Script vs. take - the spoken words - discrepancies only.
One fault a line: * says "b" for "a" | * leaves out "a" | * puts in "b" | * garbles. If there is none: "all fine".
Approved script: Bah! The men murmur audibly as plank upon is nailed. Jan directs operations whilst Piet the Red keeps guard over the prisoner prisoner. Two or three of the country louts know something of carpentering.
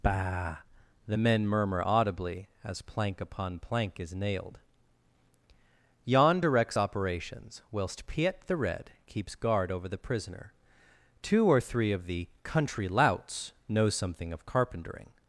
* puts in "plank"
* leaves out "prisoner"